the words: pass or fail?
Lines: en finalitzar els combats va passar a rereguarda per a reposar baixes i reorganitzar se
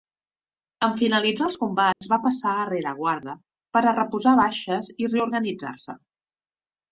pass